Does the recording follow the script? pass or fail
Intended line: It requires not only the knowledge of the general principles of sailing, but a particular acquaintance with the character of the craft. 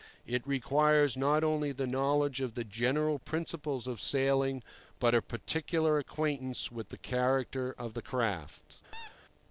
pass